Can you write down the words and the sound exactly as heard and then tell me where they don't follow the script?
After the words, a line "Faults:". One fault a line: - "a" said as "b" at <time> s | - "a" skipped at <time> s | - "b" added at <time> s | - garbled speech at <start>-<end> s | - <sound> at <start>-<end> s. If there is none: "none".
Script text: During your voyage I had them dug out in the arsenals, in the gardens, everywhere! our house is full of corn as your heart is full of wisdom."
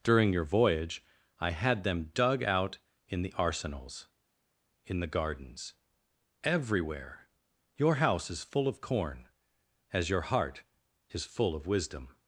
During your voyage I had them dug out in the arsenals, in the gardens, everywhere! your house is full of corn as your heart is full of wisdom."
Faults:
- "our" said as "your" at 7.8 s